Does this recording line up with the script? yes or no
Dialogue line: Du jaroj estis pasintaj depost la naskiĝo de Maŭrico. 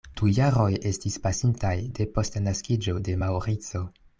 yes